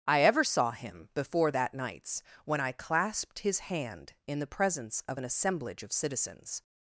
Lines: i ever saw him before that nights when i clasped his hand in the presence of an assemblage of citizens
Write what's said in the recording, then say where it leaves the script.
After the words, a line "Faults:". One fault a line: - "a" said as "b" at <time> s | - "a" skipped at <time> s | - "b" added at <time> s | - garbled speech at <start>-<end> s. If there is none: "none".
i ever saw him before that nights when i clasped his hand in the presence of an assemblage of citizens
Faults:
none